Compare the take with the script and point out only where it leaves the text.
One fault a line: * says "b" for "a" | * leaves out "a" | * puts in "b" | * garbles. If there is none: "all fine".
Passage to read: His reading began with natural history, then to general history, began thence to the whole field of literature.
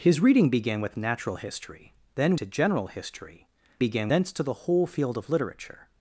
all fine